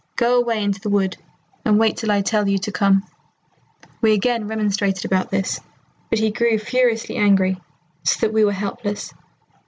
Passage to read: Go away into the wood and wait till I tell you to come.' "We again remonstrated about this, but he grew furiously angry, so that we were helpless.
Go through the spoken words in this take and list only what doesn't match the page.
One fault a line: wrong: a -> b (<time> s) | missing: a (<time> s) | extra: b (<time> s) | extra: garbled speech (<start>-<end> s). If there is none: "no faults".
no faults